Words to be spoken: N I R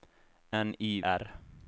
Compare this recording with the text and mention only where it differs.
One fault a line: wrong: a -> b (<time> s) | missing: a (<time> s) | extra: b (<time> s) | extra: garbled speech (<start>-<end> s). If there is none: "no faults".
no faults